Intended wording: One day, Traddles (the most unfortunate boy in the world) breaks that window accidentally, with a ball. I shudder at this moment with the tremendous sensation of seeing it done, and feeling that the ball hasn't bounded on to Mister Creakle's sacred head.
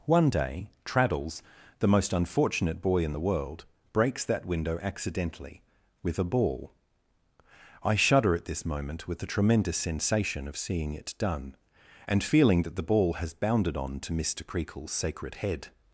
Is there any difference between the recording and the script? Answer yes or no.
yes